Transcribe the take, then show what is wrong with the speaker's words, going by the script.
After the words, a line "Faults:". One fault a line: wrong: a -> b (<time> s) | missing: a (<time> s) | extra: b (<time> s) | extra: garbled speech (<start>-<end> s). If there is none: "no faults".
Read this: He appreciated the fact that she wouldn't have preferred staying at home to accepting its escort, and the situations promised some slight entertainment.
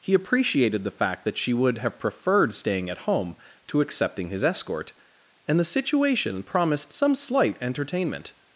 He appreciated the fact that she would have preferred staying at home to accepting his escort, and the situation promised some slight entertainment.
Faults:
wrong: wouldn't -> would (1.5 s)
wrong: its -> his (4.3 s)
wrong: situations -> situation (5.6 s)